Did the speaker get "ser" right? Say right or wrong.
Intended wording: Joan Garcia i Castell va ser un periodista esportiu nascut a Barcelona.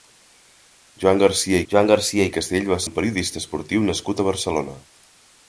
wrong